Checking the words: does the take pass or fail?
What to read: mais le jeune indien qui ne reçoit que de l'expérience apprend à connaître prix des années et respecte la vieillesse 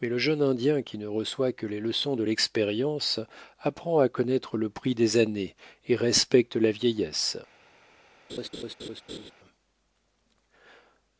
fail